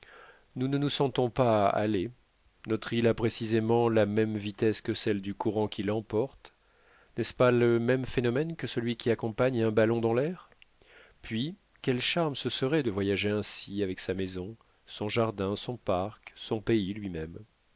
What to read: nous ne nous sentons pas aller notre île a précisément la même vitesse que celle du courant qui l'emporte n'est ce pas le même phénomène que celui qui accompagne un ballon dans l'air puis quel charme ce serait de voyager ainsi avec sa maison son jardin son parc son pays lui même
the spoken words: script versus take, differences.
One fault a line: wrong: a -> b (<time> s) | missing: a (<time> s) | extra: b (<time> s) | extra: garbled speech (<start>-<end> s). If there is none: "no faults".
no faults